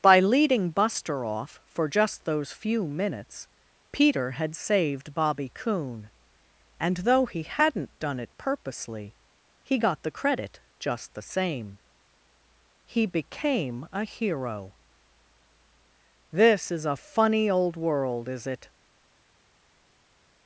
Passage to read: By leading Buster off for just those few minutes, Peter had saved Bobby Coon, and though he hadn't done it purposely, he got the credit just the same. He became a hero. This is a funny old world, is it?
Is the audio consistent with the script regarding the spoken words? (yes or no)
yes